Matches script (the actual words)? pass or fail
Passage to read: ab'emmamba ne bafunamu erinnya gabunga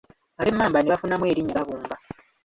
pass